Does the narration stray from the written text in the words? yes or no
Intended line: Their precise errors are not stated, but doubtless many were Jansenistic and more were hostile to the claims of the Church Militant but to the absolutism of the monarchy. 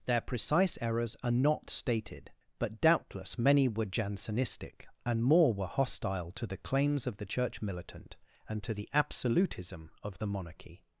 yes